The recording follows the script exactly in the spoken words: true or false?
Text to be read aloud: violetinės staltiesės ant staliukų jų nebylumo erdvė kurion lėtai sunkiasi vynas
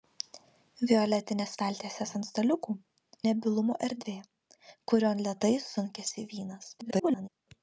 false